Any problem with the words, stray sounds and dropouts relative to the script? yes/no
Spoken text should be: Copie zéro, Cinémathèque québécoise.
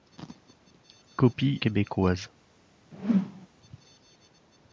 yes